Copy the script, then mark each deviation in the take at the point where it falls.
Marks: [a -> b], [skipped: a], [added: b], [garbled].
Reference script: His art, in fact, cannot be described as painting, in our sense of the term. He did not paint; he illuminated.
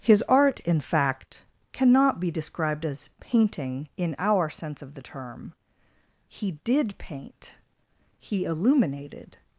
His art, in fact, cannot be described as painting, in our sense of the term. He did [skipped: not] paint; he illuminated.